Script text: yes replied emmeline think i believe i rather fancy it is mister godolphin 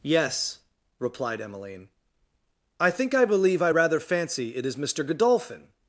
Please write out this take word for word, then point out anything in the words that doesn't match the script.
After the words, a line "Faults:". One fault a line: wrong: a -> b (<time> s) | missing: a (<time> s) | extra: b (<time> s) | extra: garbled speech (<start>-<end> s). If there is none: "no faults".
yes replied emmeline i think i believe i rather fancy it is mister godolphin
Faults:
extra: i (2.8 s)